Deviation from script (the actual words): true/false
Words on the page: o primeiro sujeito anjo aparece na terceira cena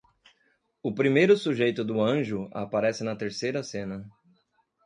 true